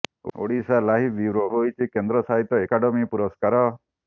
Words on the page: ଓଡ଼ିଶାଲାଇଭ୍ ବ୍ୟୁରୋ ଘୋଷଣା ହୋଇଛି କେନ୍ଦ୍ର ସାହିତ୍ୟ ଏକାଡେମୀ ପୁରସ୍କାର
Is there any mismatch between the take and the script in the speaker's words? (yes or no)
yes